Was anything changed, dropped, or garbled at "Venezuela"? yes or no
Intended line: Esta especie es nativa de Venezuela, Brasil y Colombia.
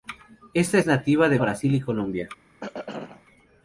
yes